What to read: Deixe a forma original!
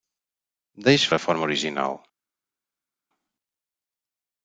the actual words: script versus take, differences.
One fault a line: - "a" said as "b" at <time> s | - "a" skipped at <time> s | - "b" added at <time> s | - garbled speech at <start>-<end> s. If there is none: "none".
none